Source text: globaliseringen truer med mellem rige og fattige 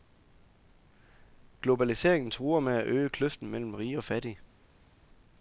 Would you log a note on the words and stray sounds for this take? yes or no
yes